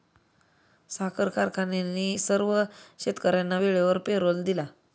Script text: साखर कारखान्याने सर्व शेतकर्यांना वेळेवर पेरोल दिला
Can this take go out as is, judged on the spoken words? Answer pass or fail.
pass